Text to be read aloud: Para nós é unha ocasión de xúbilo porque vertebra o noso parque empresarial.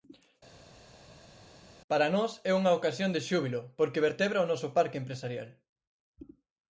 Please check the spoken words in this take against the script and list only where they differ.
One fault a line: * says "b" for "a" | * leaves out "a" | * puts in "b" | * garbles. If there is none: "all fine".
all fine